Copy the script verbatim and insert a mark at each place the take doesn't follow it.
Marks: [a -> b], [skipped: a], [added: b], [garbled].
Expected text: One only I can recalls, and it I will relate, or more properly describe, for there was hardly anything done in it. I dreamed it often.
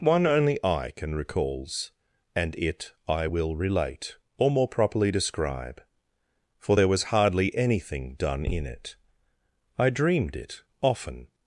One only I can recalls, and it I will relate, or more properly describe, for there was hardly anything done in it. I dreamed it often.